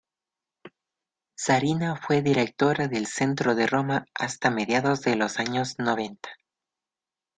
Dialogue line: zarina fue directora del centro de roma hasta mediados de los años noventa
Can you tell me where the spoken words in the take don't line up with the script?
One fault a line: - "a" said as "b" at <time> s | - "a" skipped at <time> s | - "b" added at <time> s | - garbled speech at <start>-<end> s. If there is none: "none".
none